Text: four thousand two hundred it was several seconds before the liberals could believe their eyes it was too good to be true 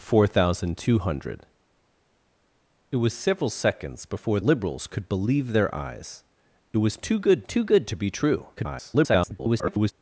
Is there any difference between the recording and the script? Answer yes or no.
yes